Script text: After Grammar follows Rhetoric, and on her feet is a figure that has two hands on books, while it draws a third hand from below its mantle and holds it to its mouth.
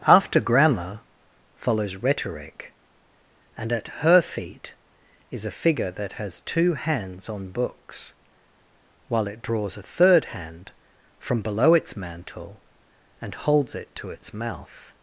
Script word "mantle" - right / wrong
right